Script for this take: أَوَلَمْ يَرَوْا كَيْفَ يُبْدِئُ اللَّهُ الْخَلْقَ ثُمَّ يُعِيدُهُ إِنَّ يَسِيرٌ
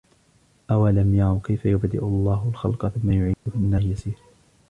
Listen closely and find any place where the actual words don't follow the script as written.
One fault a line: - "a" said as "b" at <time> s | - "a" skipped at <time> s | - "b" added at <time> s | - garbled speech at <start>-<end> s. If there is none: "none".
none